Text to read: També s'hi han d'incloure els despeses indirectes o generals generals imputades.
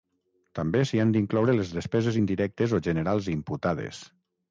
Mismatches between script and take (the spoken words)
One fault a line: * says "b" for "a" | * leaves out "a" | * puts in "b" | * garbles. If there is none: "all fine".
* says "les" for "els"
* leaves out "generals"